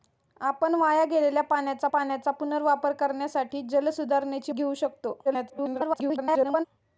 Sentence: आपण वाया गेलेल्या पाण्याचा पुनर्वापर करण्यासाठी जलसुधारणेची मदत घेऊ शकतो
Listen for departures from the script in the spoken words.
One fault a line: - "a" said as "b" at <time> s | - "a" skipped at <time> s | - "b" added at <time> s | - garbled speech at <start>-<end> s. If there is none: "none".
- "पाण्याचा" added at 1.9 s
- "मदत" skipped at 4.5 s
- garbled speech at 5.2-6.6 s